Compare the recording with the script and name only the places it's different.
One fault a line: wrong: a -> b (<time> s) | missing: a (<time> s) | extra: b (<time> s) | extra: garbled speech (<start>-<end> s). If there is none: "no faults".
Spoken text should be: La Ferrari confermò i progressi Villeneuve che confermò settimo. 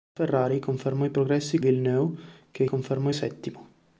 no faults